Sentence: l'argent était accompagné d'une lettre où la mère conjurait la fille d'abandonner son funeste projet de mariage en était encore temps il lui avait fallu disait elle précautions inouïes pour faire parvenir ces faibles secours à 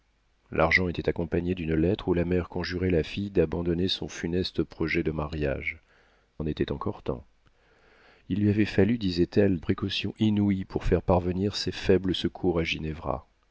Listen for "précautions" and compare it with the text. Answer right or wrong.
right